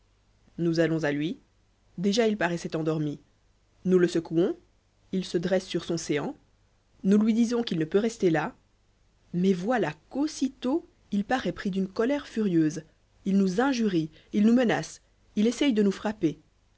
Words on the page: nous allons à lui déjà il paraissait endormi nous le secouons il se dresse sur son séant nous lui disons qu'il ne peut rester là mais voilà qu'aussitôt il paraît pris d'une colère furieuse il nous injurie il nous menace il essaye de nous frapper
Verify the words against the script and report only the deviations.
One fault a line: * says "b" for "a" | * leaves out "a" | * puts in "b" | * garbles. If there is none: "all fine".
all fine